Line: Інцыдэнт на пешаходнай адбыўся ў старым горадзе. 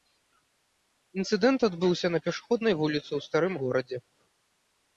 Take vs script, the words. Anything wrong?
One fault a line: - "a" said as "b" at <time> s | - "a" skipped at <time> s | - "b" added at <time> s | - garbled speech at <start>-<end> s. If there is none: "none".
- "адбыўся" added at 1.7 s
- "адбыўся" said as "вуліцы" at 2.8 s